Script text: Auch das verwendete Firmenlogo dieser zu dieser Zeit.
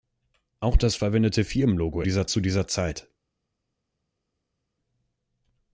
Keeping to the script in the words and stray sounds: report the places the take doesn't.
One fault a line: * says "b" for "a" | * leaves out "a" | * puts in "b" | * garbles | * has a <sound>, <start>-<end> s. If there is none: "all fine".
all fine